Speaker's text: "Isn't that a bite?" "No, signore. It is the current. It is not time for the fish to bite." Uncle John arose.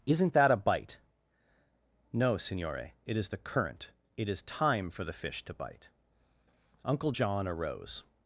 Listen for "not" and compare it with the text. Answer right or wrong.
wrong